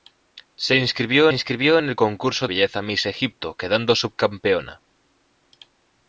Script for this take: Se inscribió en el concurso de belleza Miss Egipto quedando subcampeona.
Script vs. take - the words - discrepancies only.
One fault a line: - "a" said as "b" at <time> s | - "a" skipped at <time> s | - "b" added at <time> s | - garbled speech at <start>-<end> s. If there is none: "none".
- "inscribió" added at 1.3 s
- "de" skipped at 2.5 s